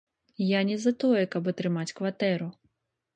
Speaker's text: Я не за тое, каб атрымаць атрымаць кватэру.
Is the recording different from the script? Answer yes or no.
yes